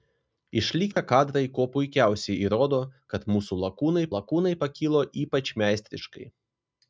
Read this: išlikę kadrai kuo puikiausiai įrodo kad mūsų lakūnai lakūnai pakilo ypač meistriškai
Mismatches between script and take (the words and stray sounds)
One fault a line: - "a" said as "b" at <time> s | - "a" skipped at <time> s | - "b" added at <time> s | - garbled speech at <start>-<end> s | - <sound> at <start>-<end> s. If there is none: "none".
- dropout at 0.9-1.0 s